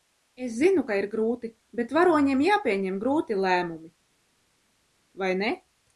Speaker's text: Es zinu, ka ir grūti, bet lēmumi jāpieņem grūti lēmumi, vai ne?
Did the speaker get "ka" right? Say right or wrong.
right